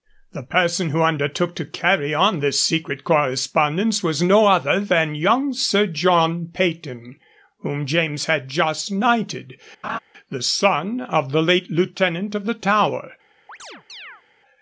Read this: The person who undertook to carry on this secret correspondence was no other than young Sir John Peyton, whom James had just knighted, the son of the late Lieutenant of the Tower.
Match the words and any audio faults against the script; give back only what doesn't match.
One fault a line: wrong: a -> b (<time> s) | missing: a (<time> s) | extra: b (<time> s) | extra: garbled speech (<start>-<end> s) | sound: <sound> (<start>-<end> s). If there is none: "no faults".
sound: laugh (9.8-10.0 s)
sound: chirp (13.5-14.2 s)